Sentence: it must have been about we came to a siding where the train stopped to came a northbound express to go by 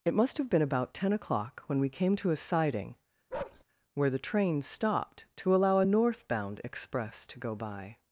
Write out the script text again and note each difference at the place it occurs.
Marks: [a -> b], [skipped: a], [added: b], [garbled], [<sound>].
it must have been about [added: ten o'clock when] we came to a siding [bark] where the train stopped to [came -> allow] a northbound express to go by